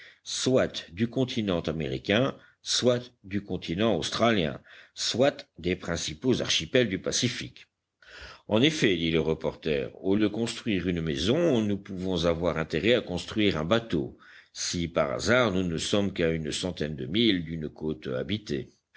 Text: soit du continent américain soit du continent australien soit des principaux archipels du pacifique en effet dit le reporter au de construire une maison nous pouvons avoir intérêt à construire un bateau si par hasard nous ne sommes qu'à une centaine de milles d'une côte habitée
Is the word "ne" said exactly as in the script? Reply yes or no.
yes